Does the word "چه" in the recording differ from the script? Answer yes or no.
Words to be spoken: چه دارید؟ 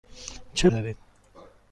no